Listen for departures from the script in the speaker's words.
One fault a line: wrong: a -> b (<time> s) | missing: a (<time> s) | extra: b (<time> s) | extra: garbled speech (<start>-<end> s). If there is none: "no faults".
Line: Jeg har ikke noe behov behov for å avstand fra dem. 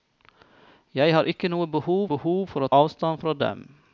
no faults